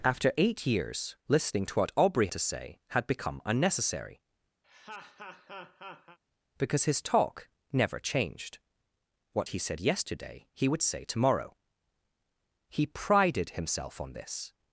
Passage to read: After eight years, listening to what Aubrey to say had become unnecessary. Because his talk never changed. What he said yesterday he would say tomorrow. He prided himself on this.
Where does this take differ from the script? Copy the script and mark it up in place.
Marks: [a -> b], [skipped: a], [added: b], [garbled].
After eight years, listening to what Aubrey to say had become unnecessary. Because his talk never changed. What he said yesterday he would say tomorrow. He prided himself on this.